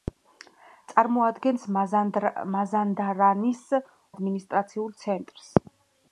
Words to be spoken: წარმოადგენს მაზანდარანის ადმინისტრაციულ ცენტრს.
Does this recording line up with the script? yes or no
yes